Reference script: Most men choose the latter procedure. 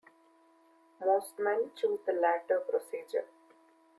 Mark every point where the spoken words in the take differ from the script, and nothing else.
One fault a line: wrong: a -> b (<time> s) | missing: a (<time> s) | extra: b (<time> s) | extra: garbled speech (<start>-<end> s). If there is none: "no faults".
no faults